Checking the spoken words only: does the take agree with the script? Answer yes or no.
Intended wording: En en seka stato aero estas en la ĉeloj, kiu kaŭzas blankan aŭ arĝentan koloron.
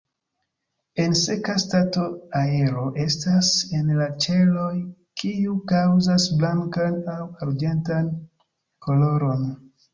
no